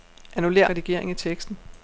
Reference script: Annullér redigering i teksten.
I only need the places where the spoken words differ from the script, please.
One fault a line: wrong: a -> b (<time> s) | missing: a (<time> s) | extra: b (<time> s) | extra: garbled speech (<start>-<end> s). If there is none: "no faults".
no faults